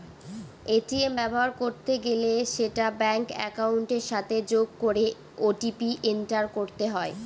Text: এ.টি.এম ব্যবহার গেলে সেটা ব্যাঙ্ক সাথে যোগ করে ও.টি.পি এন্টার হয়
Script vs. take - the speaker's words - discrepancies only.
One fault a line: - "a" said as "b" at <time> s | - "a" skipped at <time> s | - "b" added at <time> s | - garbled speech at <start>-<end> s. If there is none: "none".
- "করতে" added at 1.6 s
- "একাউন্টের" added at 3.5 s
- "করতে" added at 6.6 s